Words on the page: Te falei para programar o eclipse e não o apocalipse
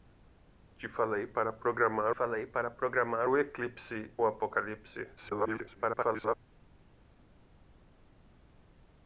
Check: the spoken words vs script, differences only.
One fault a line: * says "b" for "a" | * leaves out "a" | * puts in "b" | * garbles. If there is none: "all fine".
* puts in "falei para programar"
* leaves out "e não"
* garbles